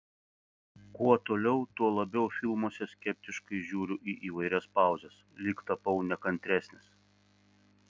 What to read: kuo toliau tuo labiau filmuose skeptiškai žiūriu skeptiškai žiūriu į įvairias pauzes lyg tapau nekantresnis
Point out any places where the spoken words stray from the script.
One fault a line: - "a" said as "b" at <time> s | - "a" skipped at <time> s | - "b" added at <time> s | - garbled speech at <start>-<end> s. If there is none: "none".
- "skeptiškai žiūriu" skipped at 4.0 s